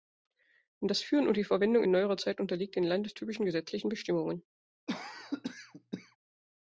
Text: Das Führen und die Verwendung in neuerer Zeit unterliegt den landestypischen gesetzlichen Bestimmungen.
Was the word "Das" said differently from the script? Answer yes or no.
no